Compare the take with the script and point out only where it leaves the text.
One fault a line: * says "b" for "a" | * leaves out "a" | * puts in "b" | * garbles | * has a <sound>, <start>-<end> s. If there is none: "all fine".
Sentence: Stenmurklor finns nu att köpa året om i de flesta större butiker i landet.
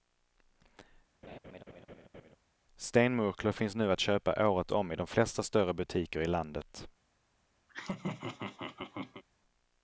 * has a laugh, 1.2-2.4 s
* has a laugh, 7.7-9.2 s